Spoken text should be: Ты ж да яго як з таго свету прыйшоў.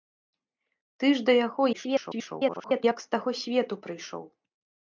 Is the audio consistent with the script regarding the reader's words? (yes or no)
no